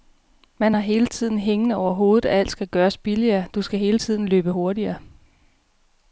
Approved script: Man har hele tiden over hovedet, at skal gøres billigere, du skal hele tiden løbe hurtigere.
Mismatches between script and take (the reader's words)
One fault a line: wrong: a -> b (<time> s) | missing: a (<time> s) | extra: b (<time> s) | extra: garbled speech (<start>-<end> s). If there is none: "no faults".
extra: hængende (1.4 s)
extra: alt (2.4 s)